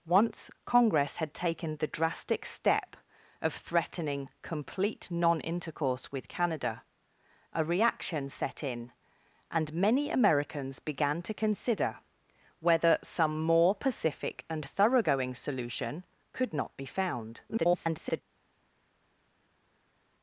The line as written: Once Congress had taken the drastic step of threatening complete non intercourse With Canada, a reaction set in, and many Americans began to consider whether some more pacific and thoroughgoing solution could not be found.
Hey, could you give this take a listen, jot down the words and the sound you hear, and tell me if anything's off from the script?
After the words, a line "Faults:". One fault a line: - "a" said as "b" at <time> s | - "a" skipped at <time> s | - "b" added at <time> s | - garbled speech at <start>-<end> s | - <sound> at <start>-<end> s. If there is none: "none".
Once Congress had taken the drastic step of threatening complete non intercourse With Canada, a reaction set in, and many Americans began to consider whether some more pacific and thoroughgoing solution could not be found. [garbled]
Faults:
- garbled speech at 17.5-18.2 s